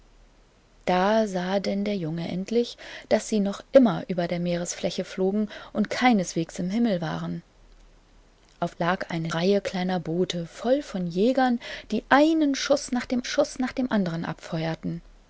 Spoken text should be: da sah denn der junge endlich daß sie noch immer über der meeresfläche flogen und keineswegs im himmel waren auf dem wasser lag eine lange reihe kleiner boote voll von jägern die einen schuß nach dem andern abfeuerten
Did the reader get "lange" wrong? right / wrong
wrong